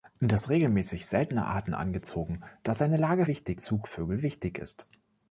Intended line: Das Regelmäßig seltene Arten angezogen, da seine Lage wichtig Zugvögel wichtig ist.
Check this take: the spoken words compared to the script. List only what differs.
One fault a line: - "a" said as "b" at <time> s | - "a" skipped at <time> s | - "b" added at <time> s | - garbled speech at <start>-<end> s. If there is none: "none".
none